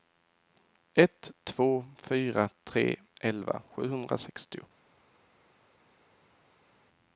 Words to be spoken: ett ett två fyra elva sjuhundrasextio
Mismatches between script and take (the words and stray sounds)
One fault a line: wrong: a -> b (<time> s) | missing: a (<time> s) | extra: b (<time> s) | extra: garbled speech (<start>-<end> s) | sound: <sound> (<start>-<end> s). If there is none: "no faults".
missing: ett (1.3 s)
extra: tre (2.6 s)